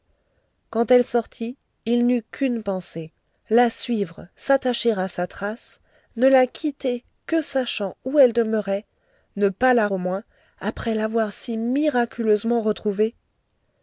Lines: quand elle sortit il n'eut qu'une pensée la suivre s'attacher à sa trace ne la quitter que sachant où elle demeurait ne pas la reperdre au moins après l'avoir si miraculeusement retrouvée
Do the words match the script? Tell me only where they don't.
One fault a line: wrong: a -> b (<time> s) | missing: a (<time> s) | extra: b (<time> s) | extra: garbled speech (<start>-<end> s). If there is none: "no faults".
missing: reperdre (9.9 s)